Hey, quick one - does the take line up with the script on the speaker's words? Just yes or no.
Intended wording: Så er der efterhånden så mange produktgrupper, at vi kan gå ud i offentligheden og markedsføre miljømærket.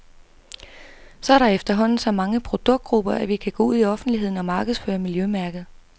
yes